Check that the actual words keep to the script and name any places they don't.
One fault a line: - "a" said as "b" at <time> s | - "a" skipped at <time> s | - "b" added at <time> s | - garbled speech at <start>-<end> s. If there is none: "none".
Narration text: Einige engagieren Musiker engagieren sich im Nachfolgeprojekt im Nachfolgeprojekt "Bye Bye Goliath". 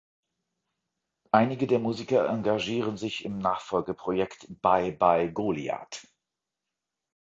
- "engagieren" said as "der" at 1.7 s
- "im Nachfolgeprojekt" skipped at 4.5 s